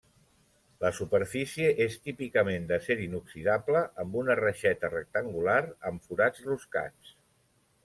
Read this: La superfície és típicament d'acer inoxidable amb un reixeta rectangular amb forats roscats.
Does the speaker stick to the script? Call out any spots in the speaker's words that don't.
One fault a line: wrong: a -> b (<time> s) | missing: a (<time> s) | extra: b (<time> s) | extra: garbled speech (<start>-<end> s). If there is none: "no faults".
wrong: un -> una (4.2 s)